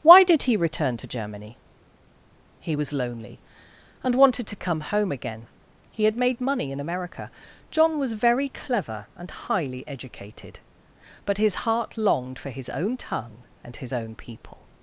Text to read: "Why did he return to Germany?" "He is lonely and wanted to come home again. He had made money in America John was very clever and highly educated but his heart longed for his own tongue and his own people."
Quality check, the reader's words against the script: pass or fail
fail